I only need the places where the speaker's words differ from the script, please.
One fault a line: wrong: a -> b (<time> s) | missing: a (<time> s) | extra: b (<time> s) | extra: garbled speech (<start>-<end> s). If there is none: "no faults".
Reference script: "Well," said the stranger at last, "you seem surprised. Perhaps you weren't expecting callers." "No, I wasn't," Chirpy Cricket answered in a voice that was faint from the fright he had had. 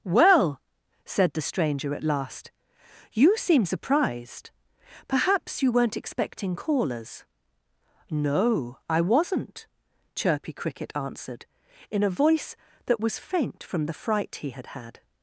no faults